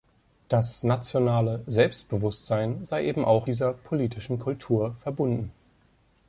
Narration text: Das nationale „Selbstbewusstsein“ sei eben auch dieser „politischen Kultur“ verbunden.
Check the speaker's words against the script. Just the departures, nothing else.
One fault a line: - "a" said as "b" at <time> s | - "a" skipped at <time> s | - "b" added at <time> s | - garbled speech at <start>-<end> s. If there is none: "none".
none